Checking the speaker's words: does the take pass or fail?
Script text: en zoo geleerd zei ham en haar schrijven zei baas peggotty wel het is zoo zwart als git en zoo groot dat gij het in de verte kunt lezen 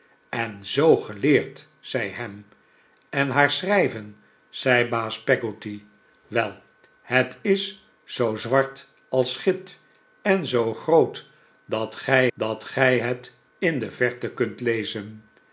fail